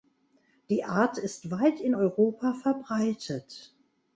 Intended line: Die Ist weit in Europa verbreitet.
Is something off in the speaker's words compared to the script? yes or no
yes